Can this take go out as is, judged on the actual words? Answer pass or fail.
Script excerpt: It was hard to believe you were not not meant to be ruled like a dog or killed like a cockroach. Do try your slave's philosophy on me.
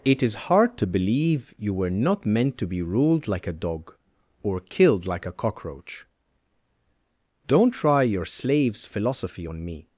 fail